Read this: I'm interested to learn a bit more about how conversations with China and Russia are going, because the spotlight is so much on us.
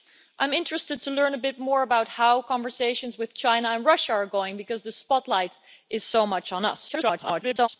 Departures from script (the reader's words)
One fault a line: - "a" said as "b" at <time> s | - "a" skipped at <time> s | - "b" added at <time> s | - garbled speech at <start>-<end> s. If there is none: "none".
- garbled speech at 6.9-7.7 s